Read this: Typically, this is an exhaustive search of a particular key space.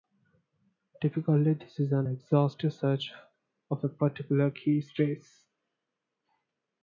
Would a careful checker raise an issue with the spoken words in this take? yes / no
no